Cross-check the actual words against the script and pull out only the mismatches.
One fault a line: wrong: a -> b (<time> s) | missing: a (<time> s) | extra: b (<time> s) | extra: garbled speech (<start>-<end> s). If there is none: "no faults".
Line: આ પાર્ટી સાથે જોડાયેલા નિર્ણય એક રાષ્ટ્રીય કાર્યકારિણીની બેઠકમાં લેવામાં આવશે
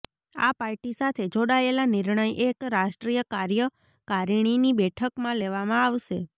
no faults